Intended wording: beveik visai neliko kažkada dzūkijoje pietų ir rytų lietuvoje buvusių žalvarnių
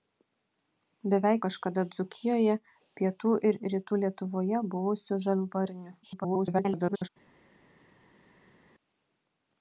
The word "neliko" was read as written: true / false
false